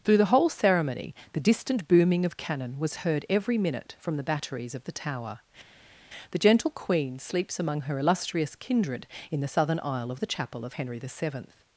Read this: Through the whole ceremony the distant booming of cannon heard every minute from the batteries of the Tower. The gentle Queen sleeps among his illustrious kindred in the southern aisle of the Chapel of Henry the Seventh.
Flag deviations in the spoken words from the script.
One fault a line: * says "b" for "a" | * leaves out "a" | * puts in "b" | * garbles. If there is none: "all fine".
* puts in "was"
* says "her" for "his"